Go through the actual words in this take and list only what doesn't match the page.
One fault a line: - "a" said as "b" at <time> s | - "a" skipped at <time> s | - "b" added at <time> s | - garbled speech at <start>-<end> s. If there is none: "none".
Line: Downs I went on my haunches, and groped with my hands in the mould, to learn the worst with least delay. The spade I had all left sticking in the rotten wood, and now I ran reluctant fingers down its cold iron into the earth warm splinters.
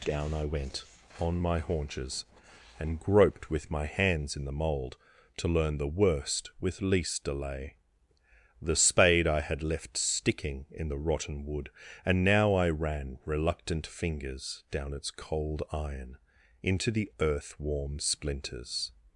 - "Downs" said as "Down" at 0.1 s
- "all" skipped at 9.6 s